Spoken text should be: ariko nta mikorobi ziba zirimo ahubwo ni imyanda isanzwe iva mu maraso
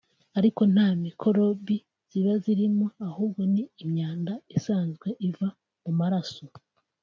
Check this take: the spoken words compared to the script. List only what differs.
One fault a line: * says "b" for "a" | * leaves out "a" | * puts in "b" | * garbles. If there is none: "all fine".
all fine